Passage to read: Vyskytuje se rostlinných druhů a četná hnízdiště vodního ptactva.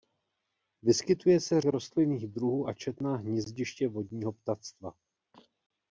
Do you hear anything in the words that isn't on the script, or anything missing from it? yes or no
no